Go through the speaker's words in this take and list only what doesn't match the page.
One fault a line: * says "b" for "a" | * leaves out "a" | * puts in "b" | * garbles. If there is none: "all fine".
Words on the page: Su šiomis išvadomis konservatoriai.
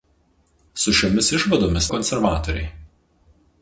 all fine